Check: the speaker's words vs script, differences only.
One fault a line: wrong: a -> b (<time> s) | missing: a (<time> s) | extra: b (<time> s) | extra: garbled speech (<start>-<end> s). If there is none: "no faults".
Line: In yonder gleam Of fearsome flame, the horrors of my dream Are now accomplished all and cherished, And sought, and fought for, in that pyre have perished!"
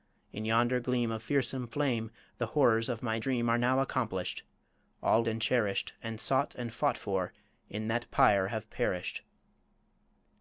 no faults